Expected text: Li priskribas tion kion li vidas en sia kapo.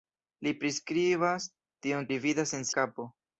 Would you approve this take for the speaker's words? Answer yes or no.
no